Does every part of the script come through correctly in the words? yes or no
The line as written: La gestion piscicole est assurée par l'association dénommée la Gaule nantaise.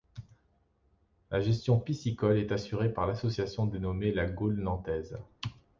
yes